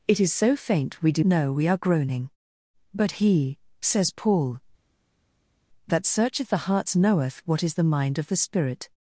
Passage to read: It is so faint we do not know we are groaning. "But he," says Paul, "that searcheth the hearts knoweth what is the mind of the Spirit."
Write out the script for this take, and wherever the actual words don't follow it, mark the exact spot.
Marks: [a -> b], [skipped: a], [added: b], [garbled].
It is so faint we do [skipped: not] know we are groaning. "But he," says Paul, "that searcheth the hearts knoweth what is the mind of the Spirit."